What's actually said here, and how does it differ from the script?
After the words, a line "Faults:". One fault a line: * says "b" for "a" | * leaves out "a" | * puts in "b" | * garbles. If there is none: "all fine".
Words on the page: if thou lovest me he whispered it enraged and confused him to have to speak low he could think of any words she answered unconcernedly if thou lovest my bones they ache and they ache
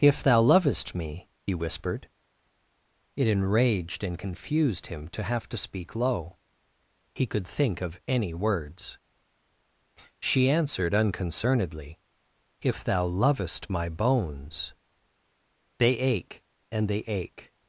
if thou lovest me he whispered it enraged and confused him to have to speak low he could think of any words she answered unconcernedly if thou lovest my bones they ache and they ache
Faults:
all fine